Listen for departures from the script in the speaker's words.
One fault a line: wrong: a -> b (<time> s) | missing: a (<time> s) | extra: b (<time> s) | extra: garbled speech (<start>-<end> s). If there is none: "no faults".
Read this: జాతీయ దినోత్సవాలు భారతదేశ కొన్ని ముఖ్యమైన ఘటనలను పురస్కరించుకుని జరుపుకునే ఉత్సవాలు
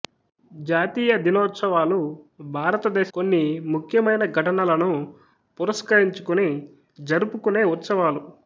no faults